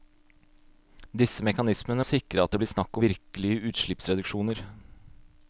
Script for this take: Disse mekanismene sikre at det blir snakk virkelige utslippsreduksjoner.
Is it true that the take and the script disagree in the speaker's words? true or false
false